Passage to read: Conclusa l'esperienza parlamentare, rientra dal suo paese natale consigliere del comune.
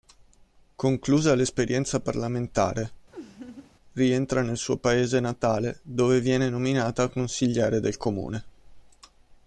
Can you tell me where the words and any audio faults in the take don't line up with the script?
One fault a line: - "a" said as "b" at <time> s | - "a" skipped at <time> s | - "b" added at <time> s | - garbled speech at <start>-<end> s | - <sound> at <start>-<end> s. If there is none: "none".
- laugh at 3.1-3.7 s
- "dal" said as "nel" at 4.4 s
- "dove viene nominata" added at 5.8 s